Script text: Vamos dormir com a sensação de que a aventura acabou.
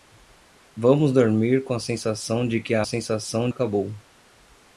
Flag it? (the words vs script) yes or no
yes